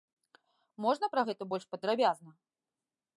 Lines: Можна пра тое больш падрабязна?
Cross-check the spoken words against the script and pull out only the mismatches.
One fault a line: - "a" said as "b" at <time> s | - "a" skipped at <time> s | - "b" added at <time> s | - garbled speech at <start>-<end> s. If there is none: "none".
- "тое" said as "гэта" at 1.3 s